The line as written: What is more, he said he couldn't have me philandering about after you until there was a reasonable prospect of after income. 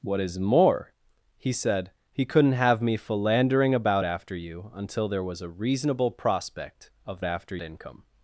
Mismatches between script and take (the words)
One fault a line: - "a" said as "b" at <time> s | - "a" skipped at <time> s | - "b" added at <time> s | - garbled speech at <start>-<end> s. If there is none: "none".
none